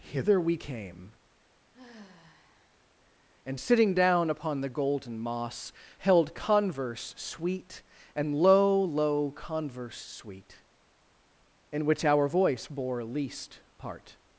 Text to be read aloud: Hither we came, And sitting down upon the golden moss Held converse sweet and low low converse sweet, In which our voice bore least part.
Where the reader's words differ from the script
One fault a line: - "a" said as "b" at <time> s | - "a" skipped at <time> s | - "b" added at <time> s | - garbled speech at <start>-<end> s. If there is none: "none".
none